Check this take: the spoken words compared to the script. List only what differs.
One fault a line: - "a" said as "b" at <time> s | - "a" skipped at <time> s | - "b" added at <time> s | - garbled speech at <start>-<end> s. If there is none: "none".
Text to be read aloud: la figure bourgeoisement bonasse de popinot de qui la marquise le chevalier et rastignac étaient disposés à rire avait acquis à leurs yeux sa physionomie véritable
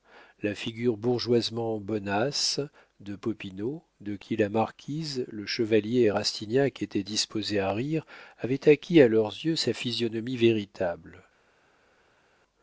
none